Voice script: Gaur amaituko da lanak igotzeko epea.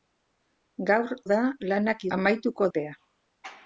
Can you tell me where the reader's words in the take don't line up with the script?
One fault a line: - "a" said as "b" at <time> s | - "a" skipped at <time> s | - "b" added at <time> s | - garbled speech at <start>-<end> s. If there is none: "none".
- "amaituko" skipped at 1.1 s
- "igotzeko" said as "amaituko" at 2.2 s